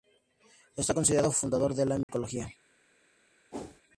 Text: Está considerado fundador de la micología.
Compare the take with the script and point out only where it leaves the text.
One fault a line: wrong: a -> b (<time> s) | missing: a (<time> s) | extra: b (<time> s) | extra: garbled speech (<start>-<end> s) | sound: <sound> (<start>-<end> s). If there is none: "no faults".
sound: dropout (2.0-2.1 s)
sound: whoosh (3.5-3.8 s)